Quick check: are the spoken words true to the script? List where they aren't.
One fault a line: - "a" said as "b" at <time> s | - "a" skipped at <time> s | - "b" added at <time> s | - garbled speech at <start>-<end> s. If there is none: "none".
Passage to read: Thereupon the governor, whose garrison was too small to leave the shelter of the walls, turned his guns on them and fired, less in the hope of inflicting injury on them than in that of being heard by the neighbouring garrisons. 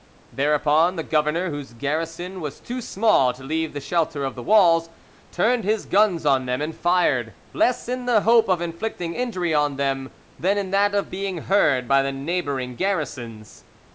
none